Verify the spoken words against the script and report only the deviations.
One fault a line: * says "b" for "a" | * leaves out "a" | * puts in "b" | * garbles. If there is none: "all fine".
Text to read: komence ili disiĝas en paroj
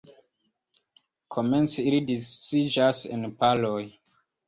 all fine